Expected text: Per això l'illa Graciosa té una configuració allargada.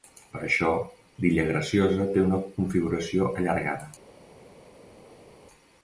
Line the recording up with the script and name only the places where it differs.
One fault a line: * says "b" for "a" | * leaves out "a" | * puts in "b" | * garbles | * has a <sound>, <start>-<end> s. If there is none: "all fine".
all fine